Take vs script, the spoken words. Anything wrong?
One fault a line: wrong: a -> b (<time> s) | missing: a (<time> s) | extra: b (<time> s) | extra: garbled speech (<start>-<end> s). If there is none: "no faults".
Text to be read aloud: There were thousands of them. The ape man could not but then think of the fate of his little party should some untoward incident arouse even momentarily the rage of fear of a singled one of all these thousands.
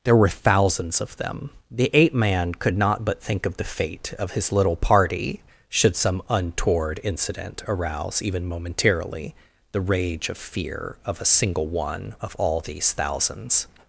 missing: then (3.2 s)
wrong: singled -> single (11.2 s)